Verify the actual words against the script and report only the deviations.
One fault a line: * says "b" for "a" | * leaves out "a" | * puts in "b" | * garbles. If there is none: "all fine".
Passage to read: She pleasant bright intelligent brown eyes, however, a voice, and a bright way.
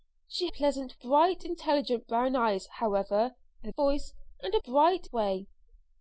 all fine